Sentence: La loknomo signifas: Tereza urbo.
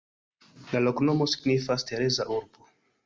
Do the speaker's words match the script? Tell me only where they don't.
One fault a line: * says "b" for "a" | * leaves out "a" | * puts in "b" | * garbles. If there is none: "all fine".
all fine